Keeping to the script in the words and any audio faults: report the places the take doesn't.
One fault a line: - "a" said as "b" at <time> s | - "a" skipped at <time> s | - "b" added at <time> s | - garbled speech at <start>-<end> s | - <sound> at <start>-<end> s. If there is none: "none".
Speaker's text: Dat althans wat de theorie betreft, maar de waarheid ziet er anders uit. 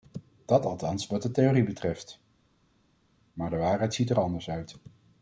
none